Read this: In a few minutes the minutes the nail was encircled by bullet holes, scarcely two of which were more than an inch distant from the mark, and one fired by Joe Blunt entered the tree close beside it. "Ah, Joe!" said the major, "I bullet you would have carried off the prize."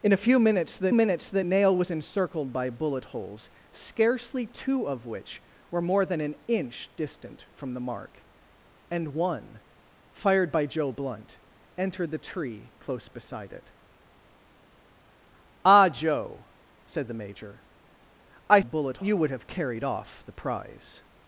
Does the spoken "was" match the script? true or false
true